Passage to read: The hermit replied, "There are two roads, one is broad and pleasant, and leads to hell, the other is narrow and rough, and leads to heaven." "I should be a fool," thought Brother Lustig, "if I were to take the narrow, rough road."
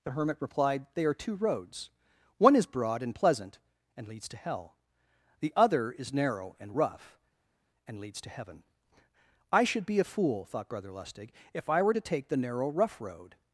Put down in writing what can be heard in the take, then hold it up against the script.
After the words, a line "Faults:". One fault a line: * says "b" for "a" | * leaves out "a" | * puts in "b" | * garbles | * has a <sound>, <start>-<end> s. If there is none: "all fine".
The hermit replied, "They are two roads, one is broad and pleasant, and leads to hell, the other is narrow and rough, and leads to heaven." "I should be a fool," thought Brother Lustig, "if I were to take the narrow, rough road."
Faults:
* says "They" for "There"